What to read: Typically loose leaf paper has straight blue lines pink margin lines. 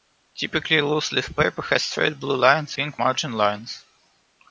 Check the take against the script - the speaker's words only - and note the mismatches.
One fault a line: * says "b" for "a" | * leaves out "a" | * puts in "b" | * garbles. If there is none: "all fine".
all fine